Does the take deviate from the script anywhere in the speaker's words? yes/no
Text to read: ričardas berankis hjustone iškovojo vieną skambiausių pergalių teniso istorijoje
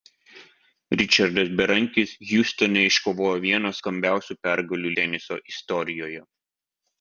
no